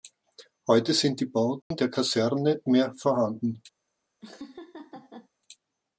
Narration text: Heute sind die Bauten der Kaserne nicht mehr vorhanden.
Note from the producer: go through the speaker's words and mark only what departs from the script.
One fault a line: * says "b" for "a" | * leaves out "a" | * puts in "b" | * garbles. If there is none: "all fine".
* leaves out "nicht"